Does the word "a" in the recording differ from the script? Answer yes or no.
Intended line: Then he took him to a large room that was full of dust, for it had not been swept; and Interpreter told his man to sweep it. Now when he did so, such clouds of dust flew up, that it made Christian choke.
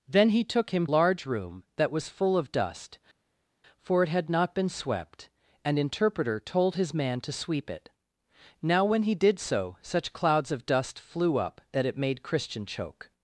yes